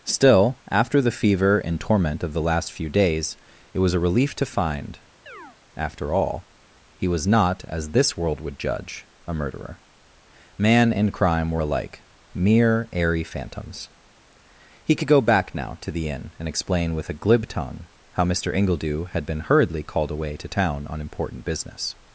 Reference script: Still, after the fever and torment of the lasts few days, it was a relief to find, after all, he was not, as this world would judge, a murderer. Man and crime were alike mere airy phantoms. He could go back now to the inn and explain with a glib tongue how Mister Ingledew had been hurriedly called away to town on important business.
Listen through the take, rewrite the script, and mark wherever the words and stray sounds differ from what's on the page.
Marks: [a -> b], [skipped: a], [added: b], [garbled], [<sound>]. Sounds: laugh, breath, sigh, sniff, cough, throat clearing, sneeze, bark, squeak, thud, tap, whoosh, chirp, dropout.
Still, after the fever and torment of the [lasts -> last] few days, it was a relief to find, [chirp] after all, he was not, as this world would judge, a murderer. Man and crime were alike mere airy phantoms. He could go back now to the inn and explain with a glib tongue how Mister Ingledew had been hurriedly called away to town on important business.